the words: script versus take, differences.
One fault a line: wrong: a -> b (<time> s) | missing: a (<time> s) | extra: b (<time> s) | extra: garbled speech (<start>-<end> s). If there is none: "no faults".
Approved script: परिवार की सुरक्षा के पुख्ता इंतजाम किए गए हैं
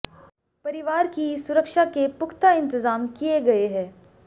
no faults